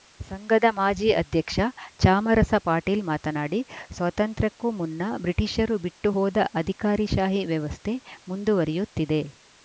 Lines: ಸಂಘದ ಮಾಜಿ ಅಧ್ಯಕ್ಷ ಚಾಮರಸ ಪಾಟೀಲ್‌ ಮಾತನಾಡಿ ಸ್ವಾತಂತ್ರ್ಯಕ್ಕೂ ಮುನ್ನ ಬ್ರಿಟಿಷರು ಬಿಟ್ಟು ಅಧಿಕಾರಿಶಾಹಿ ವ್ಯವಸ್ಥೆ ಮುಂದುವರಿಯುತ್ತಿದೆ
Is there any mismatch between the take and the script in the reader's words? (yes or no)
yes